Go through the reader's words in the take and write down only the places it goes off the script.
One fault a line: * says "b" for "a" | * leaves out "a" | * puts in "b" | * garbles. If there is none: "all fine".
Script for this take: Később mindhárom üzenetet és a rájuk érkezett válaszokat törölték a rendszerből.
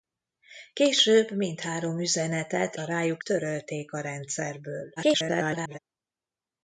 * leaves out "és"
* leaves out "érkezett válaszokat"
* garbles